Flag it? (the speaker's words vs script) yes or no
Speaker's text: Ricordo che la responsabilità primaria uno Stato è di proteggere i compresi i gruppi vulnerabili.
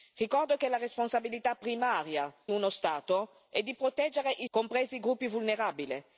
no